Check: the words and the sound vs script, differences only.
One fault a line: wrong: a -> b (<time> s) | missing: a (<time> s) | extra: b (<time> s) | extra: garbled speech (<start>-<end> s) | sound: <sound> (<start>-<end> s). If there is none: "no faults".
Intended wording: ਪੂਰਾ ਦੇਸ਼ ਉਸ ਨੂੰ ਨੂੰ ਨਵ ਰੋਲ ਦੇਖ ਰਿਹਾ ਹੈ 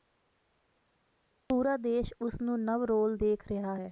missing: ਨੂੰ (2.6 s)